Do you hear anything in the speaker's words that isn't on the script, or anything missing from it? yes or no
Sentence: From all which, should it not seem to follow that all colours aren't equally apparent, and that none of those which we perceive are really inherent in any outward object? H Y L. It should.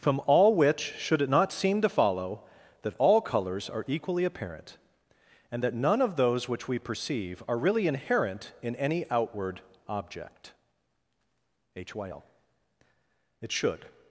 yes